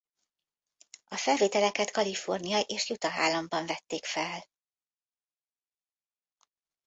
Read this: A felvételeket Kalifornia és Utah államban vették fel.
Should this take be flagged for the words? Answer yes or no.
no